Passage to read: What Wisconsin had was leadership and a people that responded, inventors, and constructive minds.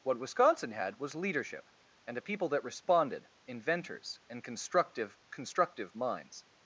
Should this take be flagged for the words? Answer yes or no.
yes